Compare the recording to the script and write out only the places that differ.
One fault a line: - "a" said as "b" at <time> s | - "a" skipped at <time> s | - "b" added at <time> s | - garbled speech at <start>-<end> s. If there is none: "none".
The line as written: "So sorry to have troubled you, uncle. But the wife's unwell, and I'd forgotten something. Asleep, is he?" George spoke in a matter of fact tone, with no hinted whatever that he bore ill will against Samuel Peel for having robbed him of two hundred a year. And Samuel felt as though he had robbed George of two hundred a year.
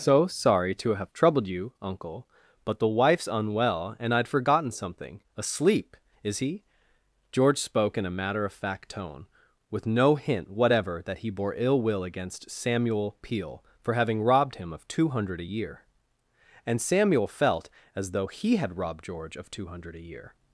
- "hinted" said as "hint" at 10.2 s